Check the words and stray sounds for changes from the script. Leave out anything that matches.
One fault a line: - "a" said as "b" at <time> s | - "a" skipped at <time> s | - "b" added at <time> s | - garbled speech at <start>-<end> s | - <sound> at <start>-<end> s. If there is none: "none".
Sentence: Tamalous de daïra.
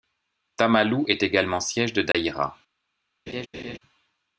- "est également siège" added at 1.1 s
- dropout at 2.1-2.1 s
- laugh at 3.3-3.8 s